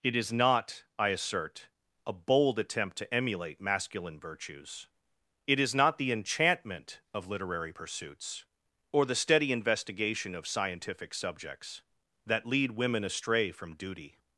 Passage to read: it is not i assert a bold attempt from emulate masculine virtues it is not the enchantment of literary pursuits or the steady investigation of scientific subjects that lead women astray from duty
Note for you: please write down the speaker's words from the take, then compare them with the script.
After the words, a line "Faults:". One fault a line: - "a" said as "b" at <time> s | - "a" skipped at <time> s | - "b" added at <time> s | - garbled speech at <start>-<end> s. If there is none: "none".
it is not i assert a bold attempt to emulate masculine virtues it is not the enchantment of literary pursuits or the steady investigation of scientific subjects that lead women astray from duty
Faults:
- "from" said as "to" at 3.0 s